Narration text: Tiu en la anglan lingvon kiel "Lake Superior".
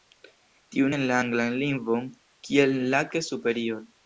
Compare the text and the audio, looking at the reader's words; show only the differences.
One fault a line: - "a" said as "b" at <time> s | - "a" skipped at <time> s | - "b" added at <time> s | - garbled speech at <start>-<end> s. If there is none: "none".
none